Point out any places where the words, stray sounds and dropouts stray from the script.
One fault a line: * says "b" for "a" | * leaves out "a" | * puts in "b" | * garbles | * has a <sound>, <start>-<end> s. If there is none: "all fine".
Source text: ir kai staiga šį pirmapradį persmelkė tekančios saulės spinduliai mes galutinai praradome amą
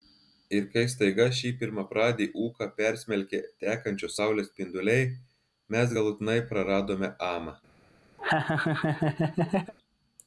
* puts in "ūką"
* has a laugh, 8.2-9.7 s